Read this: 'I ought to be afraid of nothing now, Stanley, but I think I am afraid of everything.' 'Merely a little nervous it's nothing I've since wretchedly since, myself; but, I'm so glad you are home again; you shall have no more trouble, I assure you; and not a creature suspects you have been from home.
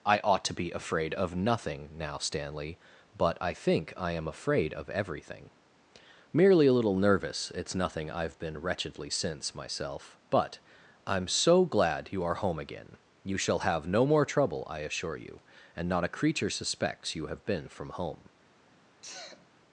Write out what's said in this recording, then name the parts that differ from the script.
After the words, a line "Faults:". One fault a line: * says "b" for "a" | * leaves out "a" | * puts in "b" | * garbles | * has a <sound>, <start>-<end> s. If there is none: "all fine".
'I ought to be afraid of nothing now, Stanley, but I think I am afraid of everything.' 'Merely a little nervous it's nothing I've been wretchedly since, myself; but, I'm so glad you are home again; you shall have no more trouble, I assure you; and not a creature suspects you have been from home.
Faults:
* says "been" for "since"
* has a sneeze, 19.0-19.5 s